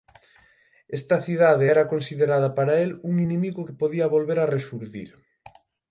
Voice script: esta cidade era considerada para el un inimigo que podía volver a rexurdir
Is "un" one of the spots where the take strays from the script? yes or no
no